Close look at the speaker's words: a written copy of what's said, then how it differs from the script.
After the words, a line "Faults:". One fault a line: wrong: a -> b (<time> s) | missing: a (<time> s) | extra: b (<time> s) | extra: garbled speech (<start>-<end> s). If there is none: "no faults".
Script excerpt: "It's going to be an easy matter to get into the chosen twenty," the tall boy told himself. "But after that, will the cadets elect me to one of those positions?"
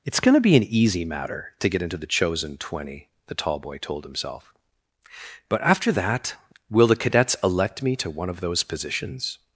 "It's going to be an easy matter to get into the chosen twenty," the tall boy told himself. "But after that, will the cadets elect me to one of those positions?"
Faults:
no faults